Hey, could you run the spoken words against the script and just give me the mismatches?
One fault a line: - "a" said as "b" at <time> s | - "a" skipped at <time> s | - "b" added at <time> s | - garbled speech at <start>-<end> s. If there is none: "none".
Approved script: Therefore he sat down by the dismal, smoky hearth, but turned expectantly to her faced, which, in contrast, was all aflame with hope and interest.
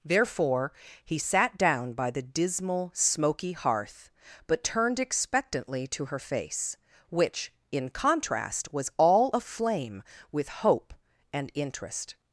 - "faced" said as "face" at 6.2 s